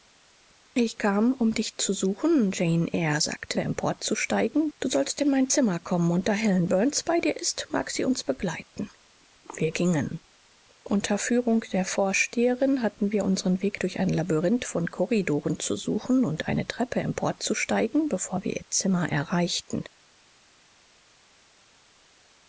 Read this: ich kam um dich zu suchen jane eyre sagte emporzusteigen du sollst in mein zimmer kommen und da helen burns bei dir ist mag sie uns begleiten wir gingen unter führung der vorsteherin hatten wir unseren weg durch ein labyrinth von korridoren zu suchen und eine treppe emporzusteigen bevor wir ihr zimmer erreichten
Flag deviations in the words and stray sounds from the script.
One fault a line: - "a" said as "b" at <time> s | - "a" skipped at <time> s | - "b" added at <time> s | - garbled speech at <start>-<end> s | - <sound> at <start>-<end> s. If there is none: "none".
none